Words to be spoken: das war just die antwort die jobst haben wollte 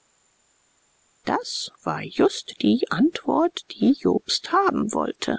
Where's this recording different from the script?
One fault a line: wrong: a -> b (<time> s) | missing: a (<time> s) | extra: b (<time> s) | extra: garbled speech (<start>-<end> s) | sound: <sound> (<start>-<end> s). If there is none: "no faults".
no faults